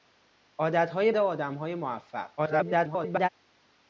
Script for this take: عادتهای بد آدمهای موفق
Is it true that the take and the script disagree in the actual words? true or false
true